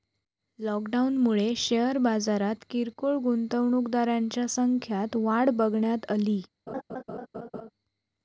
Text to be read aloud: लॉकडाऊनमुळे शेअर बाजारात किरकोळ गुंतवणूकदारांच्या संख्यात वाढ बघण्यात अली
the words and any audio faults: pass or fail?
fail